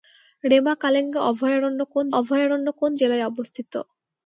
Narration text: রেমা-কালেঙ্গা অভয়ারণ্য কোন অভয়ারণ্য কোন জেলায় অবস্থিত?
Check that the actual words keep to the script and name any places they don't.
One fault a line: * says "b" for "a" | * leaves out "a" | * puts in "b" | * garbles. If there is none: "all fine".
all fine